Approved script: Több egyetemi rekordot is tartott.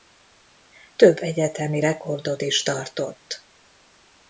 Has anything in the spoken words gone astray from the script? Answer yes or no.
no